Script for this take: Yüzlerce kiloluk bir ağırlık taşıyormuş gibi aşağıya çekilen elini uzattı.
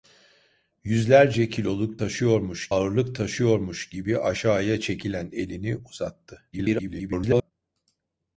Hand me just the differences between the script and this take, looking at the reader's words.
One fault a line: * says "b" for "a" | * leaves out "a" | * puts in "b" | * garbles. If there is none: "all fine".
* says "taşıyormuş" for "bir"
* garbles